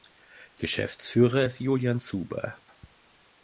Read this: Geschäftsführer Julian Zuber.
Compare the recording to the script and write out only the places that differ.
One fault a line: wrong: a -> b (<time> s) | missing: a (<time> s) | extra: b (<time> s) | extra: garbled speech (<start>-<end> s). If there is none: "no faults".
extra: ist (1.4 s)